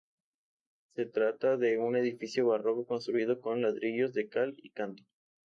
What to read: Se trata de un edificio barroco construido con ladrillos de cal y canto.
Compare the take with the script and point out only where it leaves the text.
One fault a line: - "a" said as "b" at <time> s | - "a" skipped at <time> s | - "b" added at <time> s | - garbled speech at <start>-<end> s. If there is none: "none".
none